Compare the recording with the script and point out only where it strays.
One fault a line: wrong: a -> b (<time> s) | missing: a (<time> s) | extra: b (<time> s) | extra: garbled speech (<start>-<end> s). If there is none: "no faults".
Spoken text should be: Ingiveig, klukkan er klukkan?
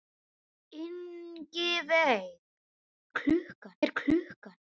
no faults